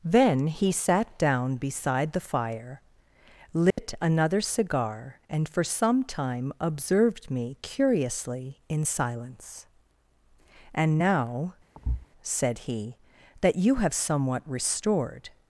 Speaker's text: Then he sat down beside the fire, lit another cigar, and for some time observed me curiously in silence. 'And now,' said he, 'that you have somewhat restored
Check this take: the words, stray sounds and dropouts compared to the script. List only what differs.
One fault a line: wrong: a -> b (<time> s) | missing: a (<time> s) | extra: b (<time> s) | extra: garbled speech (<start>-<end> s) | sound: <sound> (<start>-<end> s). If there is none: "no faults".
sound: dropout (3.7-3.8 s)
sound: thud (11.7-12.1 s)